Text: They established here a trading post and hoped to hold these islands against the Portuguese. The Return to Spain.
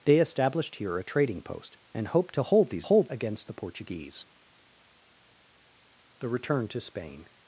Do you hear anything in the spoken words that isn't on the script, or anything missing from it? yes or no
yes